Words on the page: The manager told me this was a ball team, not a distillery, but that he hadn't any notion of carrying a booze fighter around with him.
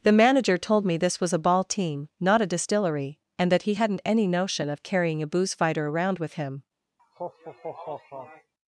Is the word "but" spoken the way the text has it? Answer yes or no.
no